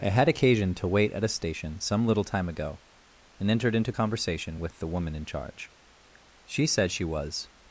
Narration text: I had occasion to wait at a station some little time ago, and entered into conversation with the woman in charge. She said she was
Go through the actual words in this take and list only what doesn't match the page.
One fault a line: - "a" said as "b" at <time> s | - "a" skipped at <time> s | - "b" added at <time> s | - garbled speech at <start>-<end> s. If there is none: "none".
none